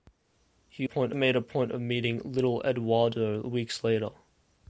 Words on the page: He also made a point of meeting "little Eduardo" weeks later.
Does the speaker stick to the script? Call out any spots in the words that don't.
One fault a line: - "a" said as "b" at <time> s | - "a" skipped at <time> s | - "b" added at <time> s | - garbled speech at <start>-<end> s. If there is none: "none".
- "also" said as "point" at 0.8 s